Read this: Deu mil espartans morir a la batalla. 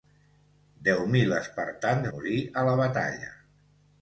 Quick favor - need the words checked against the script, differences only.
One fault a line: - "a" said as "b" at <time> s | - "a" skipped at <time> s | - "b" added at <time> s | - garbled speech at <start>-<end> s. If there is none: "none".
none